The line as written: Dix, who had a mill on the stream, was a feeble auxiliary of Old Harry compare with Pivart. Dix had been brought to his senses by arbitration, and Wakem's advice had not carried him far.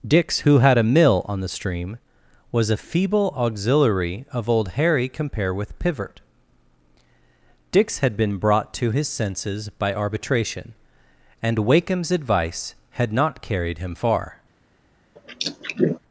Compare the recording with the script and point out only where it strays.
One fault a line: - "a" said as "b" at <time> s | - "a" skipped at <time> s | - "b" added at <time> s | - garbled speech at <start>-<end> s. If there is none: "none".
none